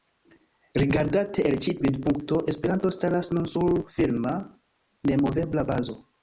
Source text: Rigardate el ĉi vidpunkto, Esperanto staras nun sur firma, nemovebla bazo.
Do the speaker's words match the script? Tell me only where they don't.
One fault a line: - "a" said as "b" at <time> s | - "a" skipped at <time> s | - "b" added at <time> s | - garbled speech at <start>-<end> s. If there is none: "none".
none